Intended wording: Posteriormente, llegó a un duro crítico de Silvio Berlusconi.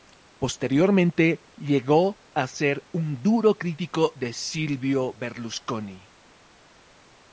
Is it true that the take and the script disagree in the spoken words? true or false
true